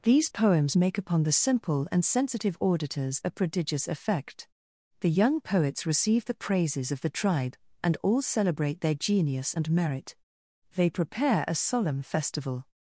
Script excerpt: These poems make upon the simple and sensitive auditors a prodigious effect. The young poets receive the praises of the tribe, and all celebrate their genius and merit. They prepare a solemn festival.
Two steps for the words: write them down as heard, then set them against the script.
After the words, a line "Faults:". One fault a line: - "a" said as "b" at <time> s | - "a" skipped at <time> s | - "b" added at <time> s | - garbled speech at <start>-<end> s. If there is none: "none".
These poems make upon the simple and sensitive auditors a prodigious effect. The young poets receive the praises of the tribe, and all celebrate their genius and merit. They prepare a solemn festival.
Faults:
none